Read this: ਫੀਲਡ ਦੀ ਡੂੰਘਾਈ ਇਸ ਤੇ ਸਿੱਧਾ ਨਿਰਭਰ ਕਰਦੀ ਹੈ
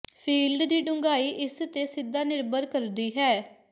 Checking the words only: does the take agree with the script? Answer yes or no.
yes